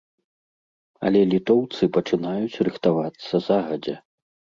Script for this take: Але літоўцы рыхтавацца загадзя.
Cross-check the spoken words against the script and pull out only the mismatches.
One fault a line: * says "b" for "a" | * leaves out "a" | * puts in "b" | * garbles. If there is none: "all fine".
* puts in "пачынаюць"